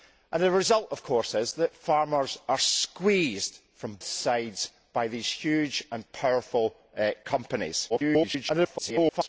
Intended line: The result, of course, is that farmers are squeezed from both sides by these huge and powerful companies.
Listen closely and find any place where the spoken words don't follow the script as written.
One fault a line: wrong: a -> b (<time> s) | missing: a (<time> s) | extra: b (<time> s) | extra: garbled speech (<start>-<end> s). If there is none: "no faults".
missing: both (4.0 s)
extra: garbled speech (7.9-9.3 s)